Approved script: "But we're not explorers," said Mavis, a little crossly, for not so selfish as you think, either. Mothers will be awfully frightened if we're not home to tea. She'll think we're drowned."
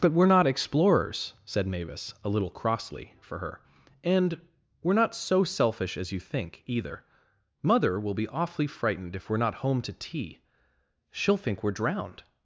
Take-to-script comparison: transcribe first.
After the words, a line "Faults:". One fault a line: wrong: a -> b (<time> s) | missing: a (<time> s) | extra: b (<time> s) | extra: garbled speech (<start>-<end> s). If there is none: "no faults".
"But we're not explorers," said Mavis, a little crossly, for her; "and we're not so selfish as you think, either. Mother will be awfully frightened if we're not home to tea. She'll think we're drowned."
Faults:
extra: her and we're (3.4 s)
wrong: Mothers -> Mother (7.6 s)